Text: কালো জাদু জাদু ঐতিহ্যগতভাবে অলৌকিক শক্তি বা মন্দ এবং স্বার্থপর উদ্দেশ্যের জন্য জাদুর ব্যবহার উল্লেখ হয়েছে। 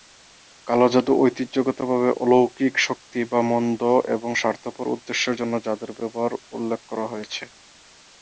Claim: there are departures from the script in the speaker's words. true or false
true